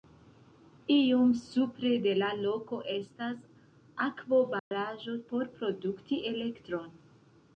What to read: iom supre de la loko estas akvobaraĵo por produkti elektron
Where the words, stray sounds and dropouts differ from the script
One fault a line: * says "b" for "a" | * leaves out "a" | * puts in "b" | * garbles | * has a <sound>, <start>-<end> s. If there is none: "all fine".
* has a dropout, 4.6-4.7 s